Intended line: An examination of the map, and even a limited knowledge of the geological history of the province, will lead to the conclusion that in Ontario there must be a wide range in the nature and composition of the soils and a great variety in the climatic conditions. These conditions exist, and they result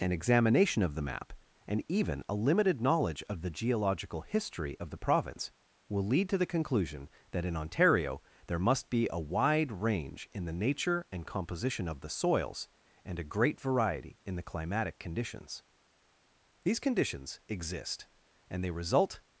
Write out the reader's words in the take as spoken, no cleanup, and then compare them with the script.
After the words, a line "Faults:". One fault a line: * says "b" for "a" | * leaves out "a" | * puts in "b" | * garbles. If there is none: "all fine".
An examination of the map, and even a limited knowledge of the geological history of the province, will lead to the conclusion that in Ontario there must be a wide range in the nature and composition of the soils and a great variety in the climatic conditions. These conditions exist, and they result
Faults:
all fine